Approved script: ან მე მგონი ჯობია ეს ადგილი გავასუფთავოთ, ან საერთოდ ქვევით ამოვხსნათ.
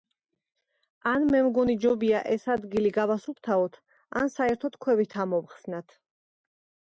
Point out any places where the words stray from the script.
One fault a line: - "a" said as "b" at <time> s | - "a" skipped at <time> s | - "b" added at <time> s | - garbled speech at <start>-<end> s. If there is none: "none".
none